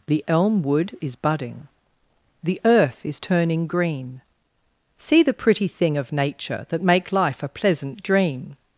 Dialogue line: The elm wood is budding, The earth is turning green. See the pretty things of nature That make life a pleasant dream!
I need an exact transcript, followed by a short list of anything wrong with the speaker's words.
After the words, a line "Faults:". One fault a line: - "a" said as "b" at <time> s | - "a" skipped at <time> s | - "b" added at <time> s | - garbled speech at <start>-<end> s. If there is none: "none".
The elm wood is budding, The earth is turning green. See the pretty thing of nature That make life a pleasant dream!
Faults:
- "things" said as "thing" at 5.7 s